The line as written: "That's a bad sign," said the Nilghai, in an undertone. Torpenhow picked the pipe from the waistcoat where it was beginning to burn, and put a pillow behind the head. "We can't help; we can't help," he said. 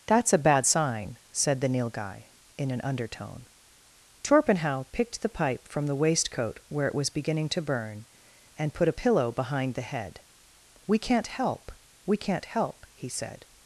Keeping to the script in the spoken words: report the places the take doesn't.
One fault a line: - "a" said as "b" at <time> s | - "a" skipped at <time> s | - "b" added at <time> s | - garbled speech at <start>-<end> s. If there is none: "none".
none